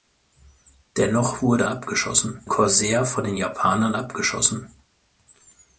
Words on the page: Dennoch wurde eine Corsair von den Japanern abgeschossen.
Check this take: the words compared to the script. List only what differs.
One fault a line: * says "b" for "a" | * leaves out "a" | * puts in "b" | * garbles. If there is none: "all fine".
* says "abgeschossen" for "eine"